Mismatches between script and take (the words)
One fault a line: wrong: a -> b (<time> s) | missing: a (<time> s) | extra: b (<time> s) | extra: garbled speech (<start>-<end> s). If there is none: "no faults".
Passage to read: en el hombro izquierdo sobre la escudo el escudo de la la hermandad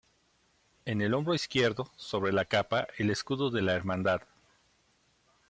wrong: escudo -> capa (2.4 s)
missing: la (3.7 s)